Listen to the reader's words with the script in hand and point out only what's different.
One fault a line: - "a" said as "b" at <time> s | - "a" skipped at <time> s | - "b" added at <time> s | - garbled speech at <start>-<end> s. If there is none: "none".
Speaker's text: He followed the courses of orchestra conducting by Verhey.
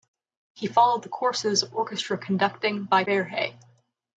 none